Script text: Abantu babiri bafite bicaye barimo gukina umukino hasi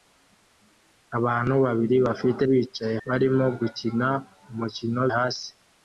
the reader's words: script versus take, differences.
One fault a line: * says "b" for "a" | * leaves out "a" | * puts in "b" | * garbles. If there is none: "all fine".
all fine